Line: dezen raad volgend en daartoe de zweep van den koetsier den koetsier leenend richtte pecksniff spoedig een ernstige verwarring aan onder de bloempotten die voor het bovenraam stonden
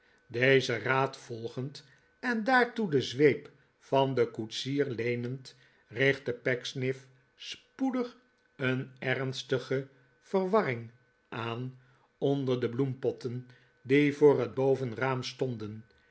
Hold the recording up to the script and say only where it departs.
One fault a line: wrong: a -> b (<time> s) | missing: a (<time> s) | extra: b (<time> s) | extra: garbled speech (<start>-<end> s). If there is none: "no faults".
missing: den koetsier (4.8 s)